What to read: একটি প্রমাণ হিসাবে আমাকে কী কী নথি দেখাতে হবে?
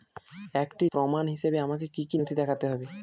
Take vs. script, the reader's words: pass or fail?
pass